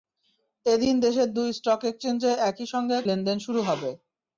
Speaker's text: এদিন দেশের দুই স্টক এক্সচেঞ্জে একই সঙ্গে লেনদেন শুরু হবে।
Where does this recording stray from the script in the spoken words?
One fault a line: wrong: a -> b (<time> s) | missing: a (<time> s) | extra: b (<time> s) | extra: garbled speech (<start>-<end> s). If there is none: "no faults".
no faults